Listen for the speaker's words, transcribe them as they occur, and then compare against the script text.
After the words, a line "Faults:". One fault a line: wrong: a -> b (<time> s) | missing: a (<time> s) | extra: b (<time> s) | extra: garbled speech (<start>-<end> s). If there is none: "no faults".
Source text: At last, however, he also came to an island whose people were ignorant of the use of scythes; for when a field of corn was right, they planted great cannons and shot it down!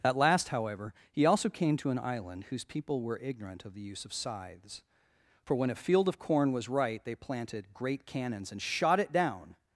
At last, however, he also came to an island whose people were ignorant of the use of scythes; for when a field of corn was right, they planted great cannons and shot it down!
Faults:
no faults